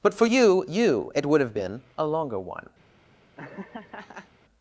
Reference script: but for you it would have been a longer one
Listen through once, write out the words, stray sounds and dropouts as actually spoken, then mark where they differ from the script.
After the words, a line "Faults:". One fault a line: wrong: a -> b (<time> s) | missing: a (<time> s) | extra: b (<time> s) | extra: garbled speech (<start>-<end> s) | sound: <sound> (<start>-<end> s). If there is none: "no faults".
but for you you it would have been a longer one
Faults:
extra: you (0.7 s)
sound: laugh (3.4-4.3 s)